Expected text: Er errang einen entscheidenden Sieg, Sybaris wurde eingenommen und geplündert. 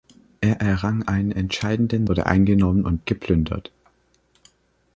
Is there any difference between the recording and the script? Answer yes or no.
yes